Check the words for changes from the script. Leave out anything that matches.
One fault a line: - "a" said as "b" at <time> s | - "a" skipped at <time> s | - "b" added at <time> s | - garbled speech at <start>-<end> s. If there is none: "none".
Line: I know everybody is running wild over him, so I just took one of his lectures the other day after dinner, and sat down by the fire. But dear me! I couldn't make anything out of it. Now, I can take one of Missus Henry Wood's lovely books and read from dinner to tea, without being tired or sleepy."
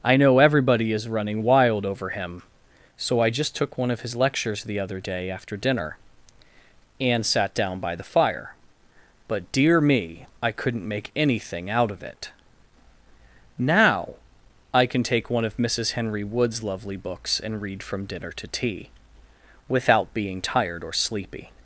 none